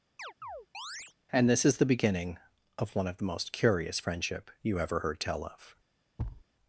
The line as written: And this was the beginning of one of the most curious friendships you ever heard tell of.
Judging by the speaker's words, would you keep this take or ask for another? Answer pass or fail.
fail